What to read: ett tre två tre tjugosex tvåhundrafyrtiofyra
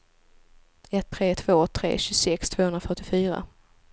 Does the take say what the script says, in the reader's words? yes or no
yes